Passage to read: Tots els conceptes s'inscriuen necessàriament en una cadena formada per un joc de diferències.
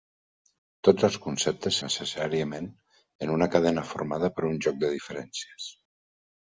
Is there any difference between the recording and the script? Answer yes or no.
yes